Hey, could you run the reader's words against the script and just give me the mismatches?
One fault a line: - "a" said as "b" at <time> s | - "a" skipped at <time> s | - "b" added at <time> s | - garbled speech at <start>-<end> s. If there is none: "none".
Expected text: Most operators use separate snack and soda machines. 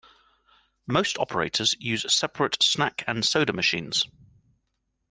none